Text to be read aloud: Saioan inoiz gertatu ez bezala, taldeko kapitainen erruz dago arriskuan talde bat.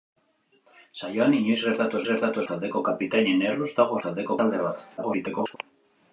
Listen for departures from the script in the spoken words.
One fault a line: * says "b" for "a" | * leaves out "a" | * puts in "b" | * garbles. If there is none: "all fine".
* says "gertatu" for "bezala"
* says "taldeko" for "arriskuan"
* garbles